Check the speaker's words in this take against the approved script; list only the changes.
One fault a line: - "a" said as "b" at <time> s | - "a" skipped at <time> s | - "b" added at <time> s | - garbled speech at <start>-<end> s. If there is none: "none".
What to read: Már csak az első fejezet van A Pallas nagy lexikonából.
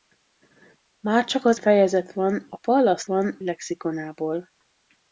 - "első" skipped at 1.6 s
- "nagy" said as "van" at 3.0 s